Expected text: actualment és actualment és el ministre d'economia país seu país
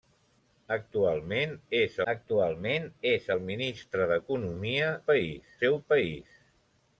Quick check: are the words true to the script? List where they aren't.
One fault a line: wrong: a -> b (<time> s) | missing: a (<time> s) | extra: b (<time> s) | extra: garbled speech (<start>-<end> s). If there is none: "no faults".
no faults